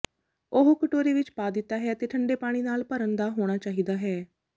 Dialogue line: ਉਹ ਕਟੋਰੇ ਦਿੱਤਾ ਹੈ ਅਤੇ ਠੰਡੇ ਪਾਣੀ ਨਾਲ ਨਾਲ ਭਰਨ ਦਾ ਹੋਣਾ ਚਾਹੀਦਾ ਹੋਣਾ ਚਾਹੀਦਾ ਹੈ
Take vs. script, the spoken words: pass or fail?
fail